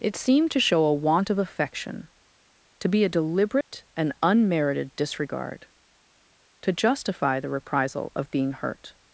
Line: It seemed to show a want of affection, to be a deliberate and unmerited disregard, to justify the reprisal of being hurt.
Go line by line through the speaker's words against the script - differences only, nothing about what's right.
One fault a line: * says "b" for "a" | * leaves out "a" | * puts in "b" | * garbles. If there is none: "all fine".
all fine